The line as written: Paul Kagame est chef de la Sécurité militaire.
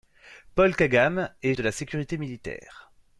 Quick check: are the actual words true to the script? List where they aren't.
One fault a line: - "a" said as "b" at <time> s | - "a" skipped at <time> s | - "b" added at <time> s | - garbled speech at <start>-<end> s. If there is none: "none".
- "chef" skipped at 1.5 s